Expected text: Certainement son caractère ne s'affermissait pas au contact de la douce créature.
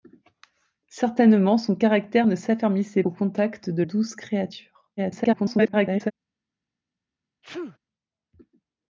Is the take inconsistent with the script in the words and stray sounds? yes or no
yes